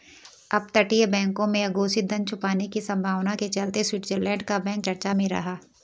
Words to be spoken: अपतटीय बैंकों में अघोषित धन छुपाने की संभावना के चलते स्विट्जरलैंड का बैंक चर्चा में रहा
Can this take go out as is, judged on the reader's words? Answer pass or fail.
pass